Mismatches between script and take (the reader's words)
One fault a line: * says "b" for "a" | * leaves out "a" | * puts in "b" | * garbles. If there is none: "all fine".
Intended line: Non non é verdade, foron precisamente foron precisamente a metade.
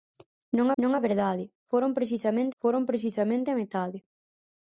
all fine